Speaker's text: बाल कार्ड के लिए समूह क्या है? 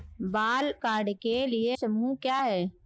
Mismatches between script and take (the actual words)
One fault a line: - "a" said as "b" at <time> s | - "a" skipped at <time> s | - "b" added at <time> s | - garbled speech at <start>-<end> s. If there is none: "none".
none